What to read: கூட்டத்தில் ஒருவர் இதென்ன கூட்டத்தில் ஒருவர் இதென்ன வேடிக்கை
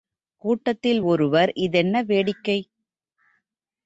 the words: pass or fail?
fail